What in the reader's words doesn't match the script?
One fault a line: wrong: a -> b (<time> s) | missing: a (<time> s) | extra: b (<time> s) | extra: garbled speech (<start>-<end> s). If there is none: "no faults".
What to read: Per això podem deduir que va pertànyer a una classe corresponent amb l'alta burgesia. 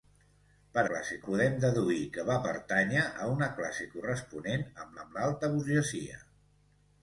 wrong: això -> classe (0.9 s)
extra: amb (5.0 s)